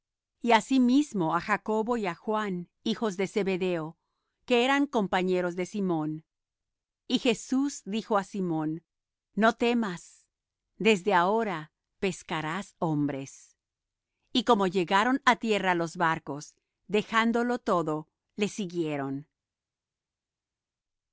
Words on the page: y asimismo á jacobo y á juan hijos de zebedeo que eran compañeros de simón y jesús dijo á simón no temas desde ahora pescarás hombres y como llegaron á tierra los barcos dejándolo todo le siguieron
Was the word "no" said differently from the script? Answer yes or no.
no